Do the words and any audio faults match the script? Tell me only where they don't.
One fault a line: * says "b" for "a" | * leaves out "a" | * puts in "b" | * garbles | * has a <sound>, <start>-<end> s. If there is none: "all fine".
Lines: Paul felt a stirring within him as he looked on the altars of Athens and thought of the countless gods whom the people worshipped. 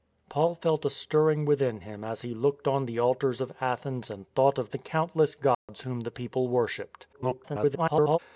* has a dropout, 5.5-5.7 s
* garbles